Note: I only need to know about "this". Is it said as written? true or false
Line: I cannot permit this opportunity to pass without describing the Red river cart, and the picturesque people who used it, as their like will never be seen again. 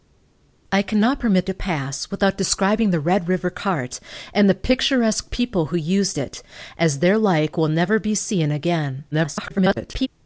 false